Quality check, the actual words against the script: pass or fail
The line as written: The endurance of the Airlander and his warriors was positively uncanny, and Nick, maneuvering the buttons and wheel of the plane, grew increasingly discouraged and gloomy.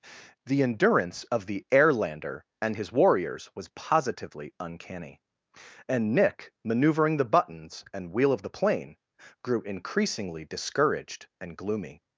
pass